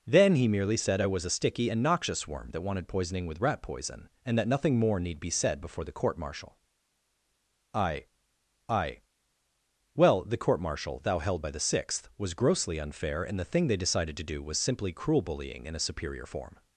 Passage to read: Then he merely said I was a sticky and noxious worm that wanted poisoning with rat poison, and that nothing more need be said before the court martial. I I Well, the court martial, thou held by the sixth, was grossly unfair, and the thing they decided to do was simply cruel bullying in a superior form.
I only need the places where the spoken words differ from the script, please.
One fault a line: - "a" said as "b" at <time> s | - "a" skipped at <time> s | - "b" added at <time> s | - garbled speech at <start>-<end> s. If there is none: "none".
none